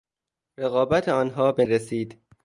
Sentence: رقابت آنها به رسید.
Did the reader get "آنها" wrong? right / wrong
right